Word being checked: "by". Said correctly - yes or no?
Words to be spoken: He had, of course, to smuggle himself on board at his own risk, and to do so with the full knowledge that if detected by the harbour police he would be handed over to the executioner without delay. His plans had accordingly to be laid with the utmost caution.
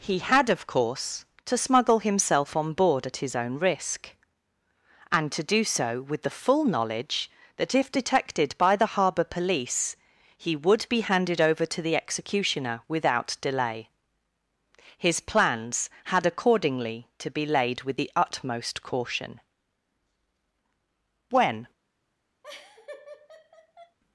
yes